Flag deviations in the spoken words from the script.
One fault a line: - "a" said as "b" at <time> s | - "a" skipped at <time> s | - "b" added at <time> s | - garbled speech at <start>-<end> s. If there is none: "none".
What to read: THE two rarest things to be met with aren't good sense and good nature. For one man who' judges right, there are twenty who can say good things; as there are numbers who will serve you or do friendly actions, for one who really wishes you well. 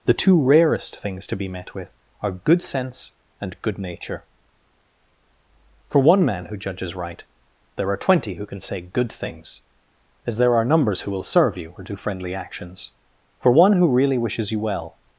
- "aren't" said as "are" at 2.2 s